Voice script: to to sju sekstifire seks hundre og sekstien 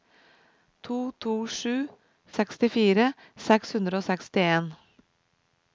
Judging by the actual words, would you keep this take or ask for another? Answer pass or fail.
pass